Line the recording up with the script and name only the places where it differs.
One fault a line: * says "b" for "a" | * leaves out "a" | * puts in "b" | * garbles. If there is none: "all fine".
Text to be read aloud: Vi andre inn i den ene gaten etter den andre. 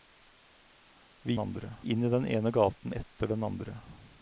all fine